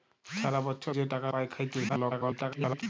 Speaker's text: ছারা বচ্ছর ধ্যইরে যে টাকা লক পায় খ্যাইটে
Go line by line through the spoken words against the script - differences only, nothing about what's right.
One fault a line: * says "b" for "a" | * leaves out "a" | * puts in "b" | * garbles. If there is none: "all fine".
* leaves out "ধ্যইরে"
* leaves out "লক"
* garbles